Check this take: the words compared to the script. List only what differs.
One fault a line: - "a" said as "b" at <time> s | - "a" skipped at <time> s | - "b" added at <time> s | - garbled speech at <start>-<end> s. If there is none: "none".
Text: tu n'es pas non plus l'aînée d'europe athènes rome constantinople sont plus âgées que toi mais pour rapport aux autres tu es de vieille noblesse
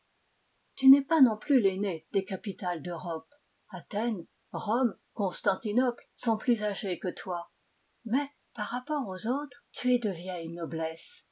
- "des capitales" added at 2.1 s
- "pour" said as "par" at 8.6 s